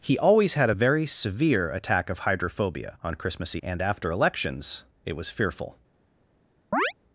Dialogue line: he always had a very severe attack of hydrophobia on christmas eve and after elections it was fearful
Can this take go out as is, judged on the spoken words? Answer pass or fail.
fail